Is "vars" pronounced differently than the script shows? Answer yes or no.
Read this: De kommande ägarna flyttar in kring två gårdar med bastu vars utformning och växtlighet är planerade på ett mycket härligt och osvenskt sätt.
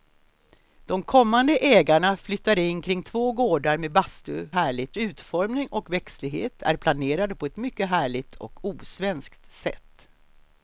yes